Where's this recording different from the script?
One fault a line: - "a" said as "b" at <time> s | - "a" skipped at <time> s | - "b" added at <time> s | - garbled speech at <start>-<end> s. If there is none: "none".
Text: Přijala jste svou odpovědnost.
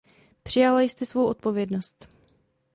none